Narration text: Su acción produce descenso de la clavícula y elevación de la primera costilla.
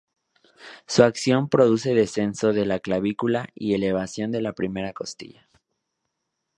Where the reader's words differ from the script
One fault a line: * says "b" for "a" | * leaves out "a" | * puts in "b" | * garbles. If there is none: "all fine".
all fine